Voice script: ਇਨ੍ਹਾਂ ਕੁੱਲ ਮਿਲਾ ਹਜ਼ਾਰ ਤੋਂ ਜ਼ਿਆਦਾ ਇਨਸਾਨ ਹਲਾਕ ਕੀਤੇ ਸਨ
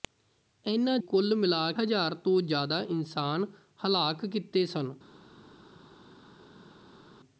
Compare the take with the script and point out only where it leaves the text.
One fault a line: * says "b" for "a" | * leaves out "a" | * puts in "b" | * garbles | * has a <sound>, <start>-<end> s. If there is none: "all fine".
all fine